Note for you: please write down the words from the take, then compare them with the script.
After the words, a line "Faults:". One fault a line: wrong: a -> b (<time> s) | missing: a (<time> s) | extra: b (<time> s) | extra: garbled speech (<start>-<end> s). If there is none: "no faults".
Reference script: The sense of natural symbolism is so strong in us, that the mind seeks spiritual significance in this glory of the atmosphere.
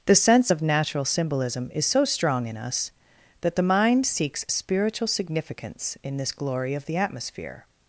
The sense of natural symbolism is so strong in us, that the mind seeks spiritual significance in this glory of the atmosphere.
Faults:
no faults